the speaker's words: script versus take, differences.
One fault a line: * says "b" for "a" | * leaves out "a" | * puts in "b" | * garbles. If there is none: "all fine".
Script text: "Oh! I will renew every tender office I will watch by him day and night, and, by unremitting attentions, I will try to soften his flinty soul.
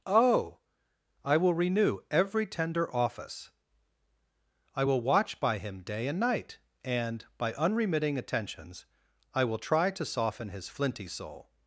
all fine